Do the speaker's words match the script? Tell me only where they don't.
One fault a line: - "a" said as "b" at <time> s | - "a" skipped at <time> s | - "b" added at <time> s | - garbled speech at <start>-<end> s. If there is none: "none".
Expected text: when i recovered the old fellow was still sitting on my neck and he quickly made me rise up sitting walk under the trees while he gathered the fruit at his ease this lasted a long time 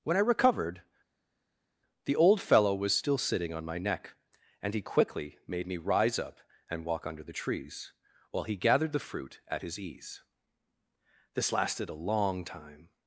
- "sitting" said as "and" at 6.7 s